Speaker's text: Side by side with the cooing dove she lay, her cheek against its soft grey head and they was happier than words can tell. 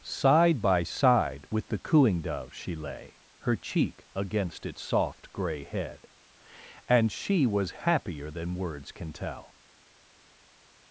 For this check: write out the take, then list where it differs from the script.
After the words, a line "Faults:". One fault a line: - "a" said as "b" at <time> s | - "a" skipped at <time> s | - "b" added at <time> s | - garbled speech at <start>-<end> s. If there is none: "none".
Side by side with the cooing dove she lay, her cheek against its soft grey head and she was happier than words can tell.
Faults:
- "they" said as "she" at 7.1 s